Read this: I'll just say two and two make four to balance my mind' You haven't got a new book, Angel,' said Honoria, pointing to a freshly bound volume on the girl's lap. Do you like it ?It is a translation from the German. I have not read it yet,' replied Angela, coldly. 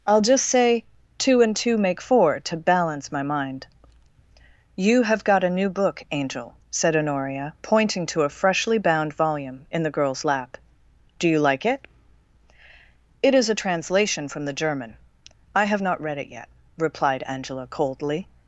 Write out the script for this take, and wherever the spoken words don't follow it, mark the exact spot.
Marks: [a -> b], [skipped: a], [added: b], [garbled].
I'll just say two and two make four to balance my mind' You [haven't -> have] got a new book, Angel,' said Honoria, pointing to a freshly bound volume [on -> in] the girl's lap. Do you like it ?It is a translation from the German. I have not read it yet,' replied Angela, coldly.